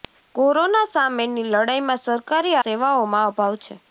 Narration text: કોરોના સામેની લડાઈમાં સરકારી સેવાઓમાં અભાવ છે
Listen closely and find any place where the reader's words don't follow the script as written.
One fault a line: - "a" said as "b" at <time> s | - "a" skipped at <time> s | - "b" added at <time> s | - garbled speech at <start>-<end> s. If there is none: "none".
none